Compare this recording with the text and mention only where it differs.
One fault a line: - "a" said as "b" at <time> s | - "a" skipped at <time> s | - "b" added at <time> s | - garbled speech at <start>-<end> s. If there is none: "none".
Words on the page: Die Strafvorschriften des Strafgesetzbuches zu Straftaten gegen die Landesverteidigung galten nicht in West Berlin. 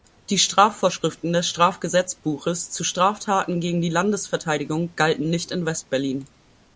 none